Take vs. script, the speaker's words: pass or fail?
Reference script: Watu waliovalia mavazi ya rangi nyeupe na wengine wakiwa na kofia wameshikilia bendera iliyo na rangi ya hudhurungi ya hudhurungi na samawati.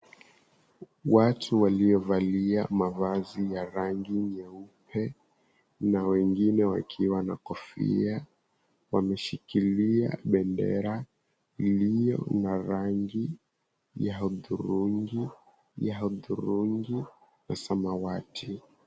pass